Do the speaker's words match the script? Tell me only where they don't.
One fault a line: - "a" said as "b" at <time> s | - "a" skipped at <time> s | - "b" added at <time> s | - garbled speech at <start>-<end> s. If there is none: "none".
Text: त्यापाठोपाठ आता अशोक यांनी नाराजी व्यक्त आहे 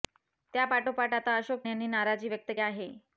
none